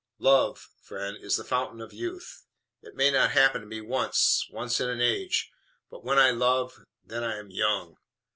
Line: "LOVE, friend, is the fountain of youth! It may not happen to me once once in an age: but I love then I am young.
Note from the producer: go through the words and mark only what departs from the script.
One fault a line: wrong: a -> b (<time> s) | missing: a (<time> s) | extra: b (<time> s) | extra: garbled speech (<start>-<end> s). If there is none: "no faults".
extra: when (6.0 s)